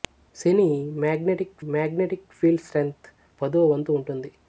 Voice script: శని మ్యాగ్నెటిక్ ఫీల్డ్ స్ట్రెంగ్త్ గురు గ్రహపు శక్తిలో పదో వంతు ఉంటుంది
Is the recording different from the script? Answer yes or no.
yes